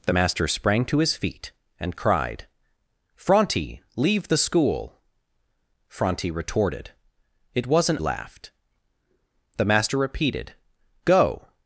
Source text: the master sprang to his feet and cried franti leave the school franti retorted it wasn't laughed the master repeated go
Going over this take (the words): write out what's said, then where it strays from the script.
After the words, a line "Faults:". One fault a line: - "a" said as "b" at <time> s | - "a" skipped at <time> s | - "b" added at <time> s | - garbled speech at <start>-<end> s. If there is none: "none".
the master sprang to his feet and cried franti leave the school franti retorted it wasn't laughed the master repeated go
Faults:
none